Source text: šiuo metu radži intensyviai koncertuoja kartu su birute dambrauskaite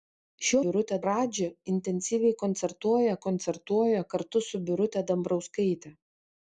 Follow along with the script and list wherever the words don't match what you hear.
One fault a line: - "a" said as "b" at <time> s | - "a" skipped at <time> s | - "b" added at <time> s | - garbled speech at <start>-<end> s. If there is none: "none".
- "metu" said as "birute" at 0.7 s
- "koncertuoja" added at 3.3 s